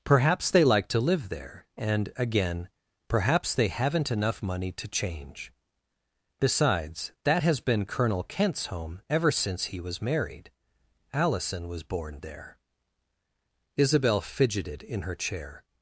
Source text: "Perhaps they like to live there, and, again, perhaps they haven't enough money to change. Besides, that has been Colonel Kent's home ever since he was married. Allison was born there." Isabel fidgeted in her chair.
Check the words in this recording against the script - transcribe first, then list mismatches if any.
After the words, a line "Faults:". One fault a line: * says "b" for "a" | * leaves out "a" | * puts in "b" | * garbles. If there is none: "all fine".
"Perhaps they like to live there, and, again, perhaps they haven't enough money to change. Besides, that has been Colonel Kent's home ever since he was married. Allison was born there." Isabel fidgeted in her chair.
Faults:
all fine